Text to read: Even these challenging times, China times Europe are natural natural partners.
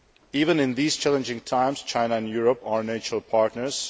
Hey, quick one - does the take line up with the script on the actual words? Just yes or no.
no